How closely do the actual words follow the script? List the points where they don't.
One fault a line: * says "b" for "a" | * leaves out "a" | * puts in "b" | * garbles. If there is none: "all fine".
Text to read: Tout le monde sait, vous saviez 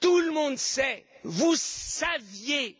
all fine